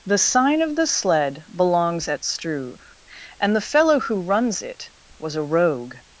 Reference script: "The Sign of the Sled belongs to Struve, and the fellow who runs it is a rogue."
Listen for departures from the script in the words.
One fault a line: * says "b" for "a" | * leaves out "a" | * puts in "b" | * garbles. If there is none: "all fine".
* says "at" for "to"
* says "was" for "is"